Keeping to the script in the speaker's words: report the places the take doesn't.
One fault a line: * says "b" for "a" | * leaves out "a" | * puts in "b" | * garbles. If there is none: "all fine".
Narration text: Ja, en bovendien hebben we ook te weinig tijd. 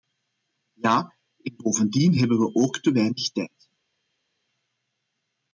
all fine